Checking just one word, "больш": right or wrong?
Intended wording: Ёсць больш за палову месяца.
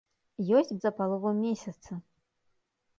wrong